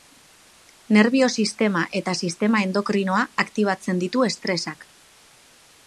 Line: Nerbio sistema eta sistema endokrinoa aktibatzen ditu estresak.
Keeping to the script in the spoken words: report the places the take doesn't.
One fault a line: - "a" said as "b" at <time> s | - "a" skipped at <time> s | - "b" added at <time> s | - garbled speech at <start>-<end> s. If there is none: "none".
none